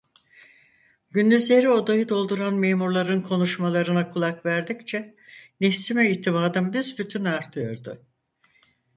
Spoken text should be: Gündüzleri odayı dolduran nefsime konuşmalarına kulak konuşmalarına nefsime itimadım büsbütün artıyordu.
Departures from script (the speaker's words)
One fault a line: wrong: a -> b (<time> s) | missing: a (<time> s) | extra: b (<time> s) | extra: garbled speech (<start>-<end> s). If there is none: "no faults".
wrong: nefsime -> memurların (2.5 s)
wrong: konuşmalarına -> verdikçe (4.5 s)